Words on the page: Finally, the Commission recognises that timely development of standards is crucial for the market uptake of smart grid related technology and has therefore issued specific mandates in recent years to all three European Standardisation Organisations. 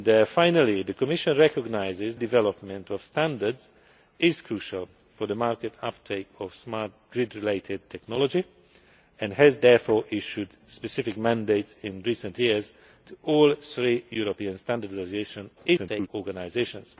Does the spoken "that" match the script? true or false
false